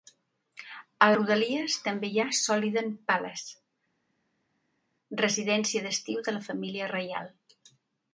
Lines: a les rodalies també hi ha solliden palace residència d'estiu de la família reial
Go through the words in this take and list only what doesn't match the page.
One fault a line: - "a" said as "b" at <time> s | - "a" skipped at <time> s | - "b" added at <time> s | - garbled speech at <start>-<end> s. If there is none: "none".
- "les" skipped at 1.1 s